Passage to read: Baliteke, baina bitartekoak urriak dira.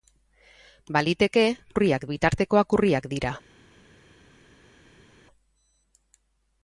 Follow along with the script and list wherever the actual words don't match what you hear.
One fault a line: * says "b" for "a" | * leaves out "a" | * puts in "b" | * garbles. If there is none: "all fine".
* says "urriak" for "baina"